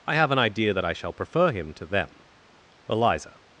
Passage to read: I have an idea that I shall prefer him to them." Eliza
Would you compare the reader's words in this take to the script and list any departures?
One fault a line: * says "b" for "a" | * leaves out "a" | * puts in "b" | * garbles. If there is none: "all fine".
all fine